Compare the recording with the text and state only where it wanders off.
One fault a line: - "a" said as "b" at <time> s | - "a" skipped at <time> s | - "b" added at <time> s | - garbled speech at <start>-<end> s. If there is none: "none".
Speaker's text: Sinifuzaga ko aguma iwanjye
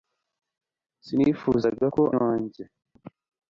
- "aguma" skipped at 2.0 s